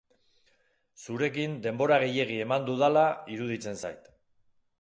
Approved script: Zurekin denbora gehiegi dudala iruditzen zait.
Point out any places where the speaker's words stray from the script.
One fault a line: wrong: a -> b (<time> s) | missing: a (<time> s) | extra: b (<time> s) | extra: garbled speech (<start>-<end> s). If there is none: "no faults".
extra: eman (2.5 s)